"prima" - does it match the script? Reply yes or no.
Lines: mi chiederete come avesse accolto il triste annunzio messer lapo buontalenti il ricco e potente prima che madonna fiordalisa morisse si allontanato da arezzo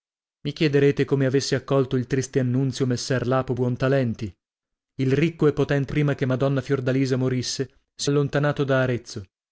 yes